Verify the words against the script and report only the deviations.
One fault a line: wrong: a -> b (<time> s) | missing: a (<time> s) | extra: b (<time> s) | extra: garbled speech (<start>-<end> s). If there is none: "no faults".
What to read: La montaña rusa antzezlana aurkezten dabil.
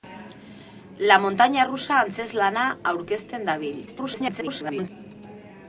extra: garbled speech (3.9-4.9 s)